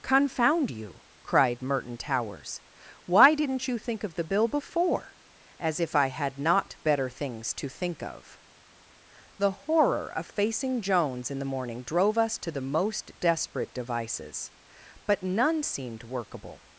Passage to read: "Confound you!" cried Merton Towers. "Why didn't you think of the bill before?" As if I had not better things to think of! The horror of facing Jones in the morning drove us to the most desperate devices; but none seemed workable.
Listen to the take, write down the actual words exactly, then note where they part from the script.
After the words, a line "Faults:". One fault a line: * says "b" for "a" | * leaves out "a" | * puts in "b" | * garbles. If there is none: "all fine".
"Confound you!" cried Merton Towers. "Why didn't you think of the bill before?" As if I had not better things to think of! The horror of facing Jones in the morning drove us to the most desperate devices; but none seemed workable.
Faults:
all fine